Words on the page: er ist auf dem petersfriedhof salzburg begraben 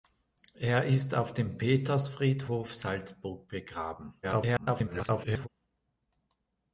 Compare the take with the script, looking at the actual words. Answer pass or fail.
fail